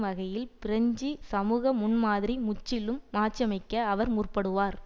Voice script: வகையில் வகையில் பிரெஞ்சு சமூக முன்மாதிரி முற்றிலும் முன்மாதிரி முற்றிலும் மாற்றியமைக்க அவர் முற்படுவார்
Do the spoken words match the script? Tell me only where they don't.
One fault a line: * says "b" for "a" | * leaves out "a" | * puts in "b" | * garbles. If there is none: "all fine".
* leaves out "வகையில்"
* leaves out "முன்மாதிரி முற்றிலும்"